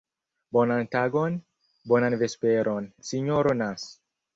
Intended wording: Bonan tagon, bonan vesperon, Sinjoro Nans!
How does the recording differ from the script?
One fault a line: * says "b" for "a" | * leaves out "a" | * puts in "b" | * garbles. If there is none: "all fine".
all fine